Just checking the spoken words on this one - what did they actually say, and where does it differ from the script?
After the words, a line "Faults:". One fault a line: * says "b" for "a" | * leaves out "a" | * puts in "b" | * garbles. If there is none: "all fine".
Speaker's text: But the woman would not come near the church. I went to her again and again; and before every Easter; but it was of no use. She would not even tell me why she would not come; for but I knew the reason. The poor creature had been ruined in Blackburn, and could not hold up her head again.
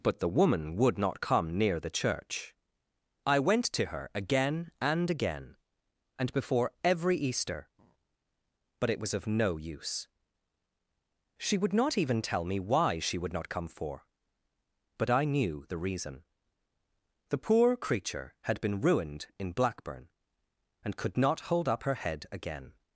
But the woman would not come near the church. I went to her again and again; and before every Easter; but it was of no use. She would not even tell me why she would not come; for but I knew the reason. The poor creature had been ruined in Blackburn, and could not hold up her head again.
Faults:
all fine